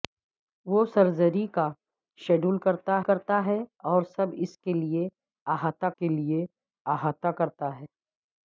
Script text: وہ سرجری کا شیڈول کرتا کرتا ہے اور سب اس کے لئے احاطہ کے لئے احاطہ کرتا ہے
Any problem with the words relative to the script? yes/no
no